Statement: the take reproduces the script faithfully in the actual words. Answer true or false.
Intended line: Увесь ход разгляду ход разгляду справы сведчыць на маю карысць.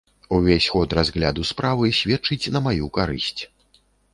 false